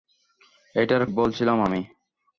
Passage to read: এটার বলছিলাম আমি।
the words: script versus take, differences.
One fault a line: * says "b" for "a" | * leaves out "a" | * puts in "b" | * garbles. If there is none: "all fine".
all fine